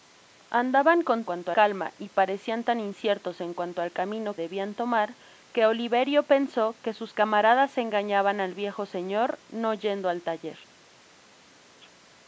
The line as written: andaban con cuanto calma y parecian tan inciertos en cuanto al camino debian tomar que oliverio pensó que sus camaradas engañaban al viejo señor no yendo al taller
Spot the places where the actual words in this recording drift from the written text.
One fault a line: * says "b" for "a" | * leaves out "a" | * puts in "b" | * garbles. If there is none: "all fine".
all fine